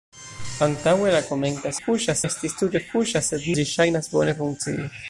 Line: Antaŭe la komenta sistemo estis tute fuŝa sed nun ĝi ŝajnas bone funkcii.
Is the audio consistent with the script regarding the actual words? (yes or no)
no